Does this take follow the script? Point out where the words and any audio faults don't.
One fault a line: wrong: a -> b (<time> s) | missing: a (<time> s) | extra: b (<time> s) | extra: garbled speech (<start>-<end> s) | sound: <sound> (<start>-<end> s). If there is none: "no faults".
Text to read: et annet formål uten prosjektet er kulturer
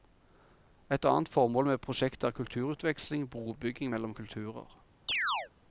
wrong: uten -> med (1.6 s)
extra: kulturutveksling brobygging mellom (2.3 s)
sound: chirp (5.1-5.5 s)